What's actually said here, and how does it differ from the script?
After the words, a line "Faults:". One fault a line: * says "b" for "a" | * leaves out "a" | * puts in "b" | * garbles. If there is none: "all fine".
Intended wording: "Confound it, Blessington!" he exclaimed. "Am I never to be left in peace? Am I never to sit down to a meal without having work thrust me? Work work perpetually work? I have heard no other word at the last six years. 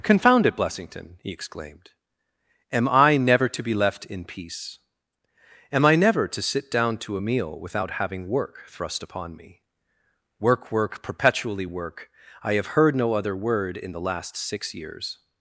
"Confound it, Blessington!" he exclaimed. "Am I never to be left in peace? Am I never to sit down to a meal without having work thrust upon me? Work work perpetually work? I have heard no other word in the last six years.
Faults:
* puts in "upon"
* says "in" for "at"